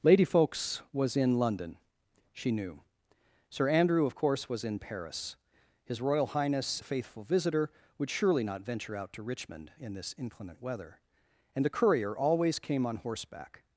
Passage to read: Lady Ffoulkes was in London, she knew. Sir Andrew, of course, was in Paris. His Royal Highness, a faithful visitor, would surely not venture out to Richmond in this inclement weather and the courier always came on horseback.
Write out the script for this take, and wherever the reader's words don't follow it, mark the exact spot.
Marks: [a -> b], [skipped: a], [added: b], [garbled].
Lady Ffoulkes was in London, she knew. Sir Andrew, of course, was in Paris. His Royal Highness, a faithful visitor, would surely not venture out to Richmond in this inclement weather and the courier always came on horseback.